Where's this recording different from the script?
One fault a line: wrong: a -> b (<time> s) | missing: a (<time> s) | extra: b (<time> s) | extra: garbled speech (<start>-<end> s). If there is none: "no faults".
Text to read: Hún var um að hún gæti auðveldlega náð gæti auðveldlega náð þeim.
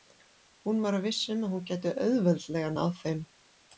extra: viss (1.1 s)
missing: gæti auðveldlega náð (2.9 s)